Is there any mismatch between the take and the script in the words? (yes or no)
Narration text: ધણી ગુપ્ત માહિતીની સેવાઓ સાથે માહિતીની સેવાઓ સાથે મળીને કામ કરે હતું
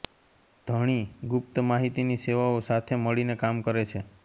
yes